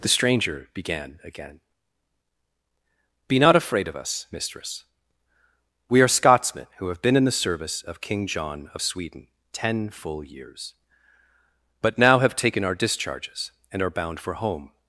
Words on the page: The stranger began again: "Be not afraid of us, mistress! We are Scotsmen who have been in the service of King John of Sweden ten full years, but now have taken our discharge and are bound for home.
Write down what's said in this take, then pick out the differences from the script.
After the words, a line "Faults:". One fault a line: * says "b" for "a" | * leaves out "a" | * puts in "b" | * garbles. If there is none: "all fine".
The stranger began again: "Be not afraid of us, mistress! We are Scotsmen who have been in the service of King John of Sweden ten full years, but now have taken our discharges and are bound for home.
Faults:
* says "discharges" for "discharge"